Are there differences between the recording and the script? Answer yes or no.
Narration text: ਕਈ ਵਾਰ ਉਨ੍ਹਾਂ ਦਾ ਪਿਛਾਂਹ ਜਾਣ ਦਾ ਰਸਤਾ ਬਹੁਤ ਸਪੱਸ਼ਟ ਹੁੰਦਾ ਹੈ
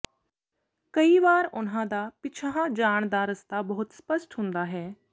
no